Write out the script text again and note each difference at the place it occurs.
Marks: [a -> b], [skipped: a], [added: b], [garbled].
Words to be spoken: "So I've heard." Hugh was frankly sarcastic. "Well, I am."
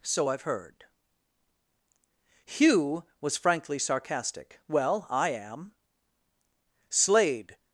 "So I've heard." Hugh was frankly sarcastic. "Well, I am." [added: Slade]